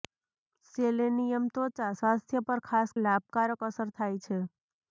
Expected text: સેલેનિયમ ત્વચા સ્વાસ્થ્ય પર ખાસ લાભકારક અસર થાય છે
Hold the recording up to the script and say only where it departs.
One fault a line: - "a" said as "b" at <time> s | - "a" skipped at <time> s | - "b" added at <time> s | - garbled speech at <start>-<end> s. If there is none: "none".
none